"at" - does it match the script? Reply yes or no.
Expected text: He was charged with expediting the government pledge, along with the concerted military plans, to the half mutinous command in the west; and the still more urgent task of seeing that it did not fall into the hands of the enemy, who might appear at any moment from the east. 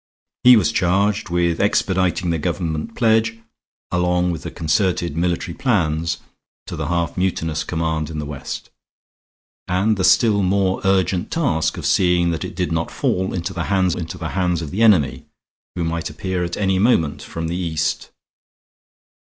yes